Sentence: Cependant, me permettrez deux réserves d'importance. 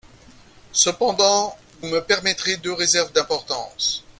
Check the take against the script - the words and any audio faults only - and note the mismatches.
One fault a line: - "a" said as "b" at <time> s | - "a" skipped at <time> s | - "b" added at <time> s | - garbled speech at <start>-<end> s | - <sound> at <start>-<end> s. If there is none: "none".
none